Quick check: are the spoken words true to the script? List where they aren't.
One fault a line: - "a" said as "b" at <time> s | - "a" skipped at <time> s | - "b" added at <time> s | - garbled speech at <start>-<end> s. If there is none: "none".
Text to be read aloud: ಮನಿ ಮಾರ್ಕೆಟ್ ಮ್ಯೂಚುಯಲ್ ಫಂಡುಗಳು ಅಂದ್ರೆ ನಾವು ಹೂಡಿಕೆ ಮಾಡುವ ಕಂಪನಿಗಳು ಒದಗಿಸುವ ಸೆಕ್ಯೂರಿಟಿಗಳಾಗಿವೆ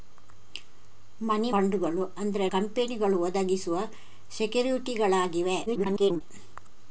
- "ಮಾರ್ಕೆಟ್ ಮ್ಯೂಚುಯಲ್" skipped at 1.5 s
- "ನಾವು ಹೂಡಿಕೆ ಮಾಡುವ" skipped at 2.5 s
- garbled speech at 5.7-6.2 s